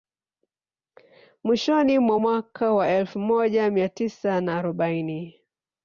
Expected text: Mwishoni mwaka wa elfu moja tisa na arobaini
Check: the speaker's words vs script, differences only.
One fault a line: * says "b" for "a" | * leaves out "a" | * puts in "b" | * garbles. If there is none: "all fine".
* puts in "mwa"
* puts in "mia"